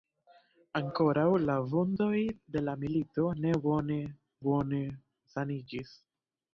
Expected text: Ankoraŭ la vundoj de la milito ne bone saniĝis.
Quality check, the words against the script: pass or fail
fail